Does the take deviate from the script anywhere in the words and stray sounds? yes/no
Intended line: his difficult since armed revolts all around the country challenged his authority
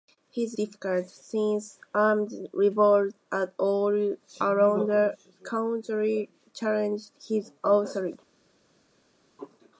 no